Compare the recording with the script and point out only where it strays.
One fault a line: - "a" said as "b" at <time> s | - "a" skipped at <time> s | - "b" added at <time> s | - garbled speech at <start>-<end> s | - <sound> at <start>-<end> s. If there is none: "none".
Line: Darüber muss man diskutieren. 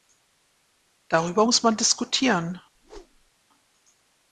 - whoosh at 2.7-3.3 s